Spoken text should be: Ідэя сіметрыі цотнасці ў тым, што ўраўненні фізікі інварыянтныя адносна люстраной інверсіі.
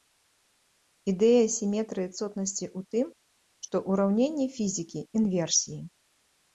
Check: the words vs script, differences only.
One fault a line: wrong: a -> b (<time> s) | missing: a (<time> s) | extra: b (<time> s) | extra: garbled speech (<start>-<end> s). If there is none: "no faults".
missing: інварыянтныя адносна люстраной (5.0 s)